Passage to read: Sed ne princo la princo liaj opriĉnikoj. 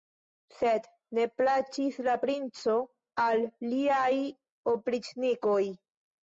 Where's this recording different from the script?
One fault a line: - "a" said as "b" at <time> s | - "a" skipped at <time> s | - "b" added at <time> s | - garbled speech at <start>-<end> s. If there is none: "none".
- "princo" said as "plaĉis" at 1.4 s
- "al" added at 3.3 s